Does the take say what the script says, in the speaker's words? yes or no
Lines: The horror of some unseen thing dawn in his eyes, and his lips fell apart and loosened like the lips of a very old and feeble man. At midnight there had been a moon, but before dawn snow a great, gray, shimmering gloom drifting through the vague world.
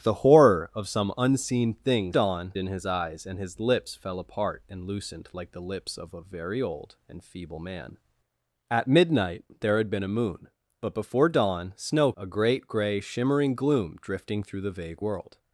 yes